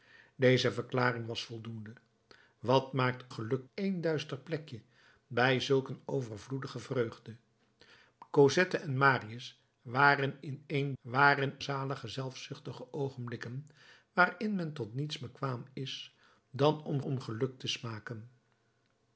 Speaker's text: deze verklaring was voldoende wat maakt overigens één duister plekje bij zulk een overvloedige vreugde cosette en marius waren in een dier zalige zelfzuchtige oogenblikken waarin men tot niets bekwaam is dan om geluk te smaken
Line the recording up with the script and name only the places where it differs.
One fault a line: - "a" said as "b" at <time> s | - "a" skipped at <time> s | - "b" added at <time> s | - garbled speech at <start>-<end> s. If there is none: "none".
- "overigens" said as "geluk" at 3.3 s
- "dier" said as "waren" at 11.0 s
- "om" added at 17.0 s